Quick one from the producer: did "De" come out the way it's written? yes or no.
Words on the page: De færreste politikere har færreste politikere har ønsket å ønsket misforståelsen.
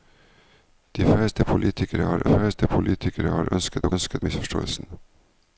yes